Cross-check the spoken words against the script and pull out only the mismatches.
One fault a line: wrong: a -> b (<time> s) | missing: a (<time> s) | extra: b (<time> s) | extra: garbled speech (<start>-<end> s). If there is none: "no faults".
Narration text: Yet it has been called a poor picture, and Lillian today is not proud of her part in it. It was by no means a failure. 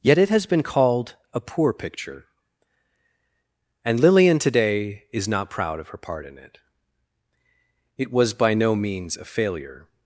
no faults